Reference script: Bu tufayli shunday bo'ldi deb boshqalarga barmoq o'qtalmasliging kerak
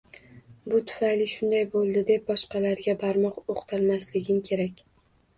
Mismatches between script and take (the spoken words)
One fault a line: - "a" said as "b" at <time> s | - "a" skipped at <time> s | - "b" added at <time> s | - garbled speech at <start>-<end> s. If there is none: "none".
none